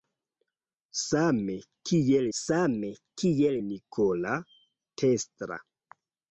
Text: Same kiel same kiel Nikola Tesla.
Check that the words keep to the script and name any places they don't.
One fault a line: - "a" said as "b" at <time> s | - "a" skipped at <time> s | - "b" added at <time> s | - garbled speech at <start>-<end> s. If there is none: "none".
none